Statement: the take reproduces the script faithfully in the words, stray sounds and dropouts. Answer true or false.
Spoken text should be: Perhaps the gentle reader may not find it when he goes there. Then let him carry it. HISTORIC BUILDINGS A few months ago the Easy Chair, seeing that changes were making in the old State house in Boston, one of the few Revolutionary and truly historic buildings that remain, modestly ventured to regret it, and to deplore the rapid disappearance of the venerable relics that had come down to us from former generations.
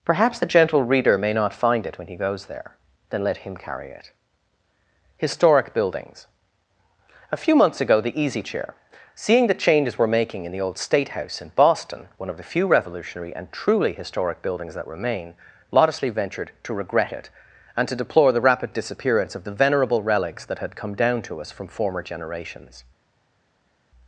false